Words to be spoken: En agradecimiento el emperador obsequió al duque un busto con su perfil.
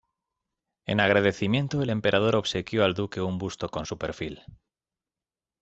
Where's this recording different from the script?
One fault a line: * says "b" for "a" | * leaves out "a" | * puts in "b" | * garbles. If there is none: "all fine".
all fine